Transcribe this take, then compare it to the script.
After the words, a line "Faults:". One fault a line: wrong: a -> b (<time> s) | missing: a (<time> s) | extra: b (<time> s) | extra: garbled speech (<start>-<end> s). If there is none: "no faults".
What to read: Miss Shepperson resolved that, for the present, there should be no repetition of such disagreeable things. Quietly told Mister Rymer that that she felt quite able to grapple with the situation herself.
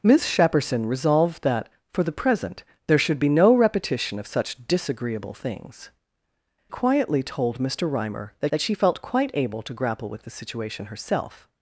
Miss Shepperson resolved that, for the present, there should be no repetition of such disagreeable things. Quietly told Mister Rymer that that she felt quite able to grapple with the situation herself.
Faults:
no faults